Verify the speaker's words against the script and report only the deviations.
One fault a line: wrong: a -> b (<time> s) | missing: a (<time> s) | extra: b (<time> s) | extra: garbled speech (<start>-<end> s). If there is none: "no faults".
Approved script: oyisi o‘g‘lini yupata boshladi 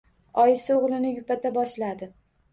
no faults